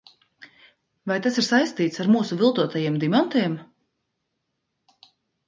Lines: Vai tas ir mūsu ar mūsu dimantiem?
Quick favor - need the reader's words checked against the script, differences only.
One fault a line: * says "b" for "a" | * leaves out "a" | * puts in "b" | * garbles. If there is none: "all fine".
* says "saistīts" for "mūsu"
* puts in "viltotajiem"